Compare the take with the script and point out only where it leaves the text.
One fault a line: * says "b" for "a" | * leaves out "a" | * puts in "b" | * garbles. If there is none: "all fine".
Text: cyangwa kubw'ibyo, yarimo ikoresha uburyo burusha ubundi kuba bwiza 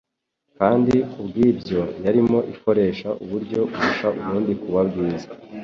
* says "kandi" for "cyangwa"